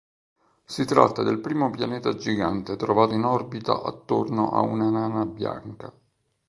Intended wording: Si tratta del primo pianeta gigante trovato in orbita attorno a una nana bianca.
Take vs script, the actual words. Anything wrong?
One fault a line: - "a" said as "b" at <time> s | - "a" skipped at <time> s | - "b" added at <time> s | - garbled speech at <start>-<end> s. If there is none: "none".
none